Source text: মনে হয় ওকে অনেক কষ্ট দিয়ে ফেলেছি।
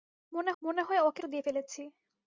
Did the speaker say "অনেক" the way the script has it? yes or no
no